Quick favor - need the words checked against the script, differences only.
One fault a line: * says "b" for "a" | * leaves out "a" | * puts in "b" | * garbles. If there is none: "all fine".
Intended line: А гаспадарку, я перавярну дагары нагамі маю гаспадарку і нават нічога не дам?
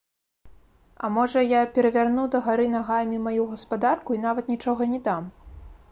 * says "можа" for "гаспадарку"